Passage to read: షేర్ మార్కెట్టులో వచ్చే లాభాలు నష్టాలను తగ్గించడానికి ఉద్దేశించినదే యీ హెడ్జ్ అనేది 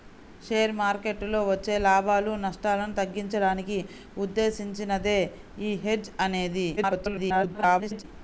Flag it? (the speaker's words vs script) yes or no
yes